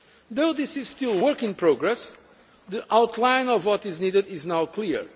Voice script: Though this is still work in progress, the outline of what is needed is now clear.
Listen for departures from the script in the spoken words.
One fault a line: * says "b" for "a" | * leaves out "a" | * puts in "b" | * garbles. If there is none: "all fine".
all fine